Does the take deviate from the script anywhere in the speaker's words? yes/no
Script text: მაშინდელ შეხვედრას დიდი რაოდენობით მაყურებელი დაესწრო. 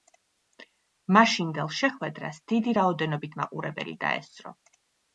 no